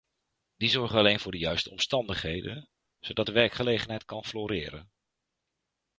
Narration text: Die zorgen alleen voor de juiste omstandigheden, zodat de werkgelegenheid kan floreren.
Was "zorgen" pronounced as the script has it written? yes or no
yes